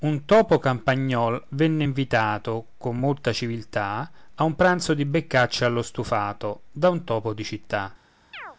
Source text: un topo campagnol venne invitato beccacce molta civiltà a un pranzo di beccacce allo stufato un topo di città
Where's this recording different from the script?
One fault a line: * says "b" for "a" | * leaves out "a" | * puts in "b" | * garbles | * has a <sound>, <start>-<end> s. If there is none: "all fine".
* says "con" for "beccacce"
* puts in "da"
* has a chirp, 8.3-8.6 s